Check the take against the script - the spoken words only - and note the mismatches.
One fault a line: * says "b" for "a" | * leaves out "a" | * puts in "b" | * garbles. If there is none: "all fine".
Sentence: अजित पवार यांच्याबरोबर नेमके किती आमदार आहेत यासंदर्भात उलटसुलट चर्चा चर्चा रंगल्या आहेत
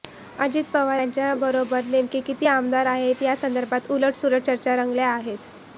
* leaves out "चर्चा"